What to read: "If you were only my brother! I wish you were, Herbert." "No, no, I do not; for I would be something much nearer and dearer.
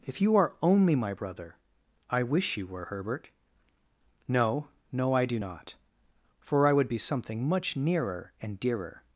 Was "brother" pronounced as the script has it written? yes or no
yes